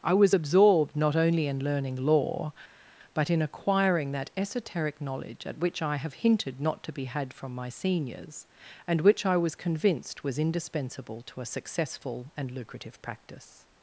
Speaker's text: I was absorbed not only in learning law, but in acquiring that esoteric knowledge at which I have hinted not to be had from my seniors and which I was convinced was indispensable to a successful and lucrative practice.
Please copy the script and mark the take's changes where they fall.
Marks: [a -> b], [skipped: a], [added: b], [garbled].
I was absorbed not only in learning law, but in acquiring that esoteric knowledge at which I have hinted not to be had from my seniors and which I was convinced was indispensable to a successful and lucrative practice.